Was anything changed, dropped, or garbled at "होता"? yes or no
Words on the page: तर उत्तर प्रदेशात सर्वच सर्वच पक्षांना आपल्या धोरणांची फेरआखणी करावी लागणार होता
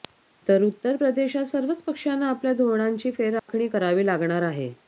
yes